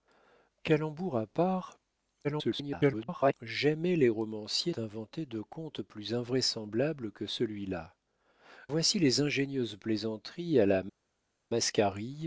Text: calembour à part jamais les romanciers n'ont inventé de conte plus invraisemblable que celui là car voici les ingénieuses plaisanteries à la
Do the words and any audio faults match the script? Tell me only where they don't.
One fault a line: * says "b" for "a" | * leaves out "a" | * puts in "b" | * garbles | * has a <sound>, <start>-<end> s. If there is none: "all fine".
* garbles
* leaves out "n'ont"
* leaves out "car"